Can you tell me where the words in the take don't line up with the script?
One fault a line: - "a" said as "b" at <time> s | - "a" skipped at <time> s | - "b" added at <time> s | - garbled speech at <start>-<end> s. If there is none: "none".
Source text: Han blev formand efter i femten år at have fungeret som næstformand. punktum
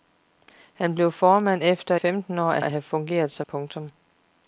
- "i" skipped at 1.9 s
- "at" added at 2.6 s
- "næstformand" skipped at 3.5 s